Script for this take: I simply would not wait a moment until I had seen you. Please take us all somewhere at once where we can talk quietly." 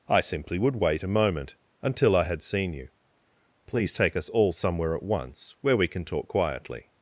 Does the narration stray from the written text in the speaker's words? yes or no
yes